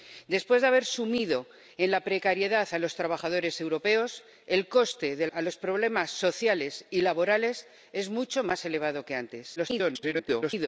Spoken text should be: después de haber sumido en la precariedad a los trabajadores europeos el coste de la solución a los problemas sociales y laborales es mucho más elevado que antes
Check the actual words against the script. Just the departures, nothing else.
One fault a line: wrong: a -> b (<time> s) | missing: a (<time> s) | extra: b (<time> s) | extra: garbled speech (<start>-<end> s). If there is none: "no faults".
missing: la solución (5.3 s)
extra: garbled speech (9.6-10.7 s)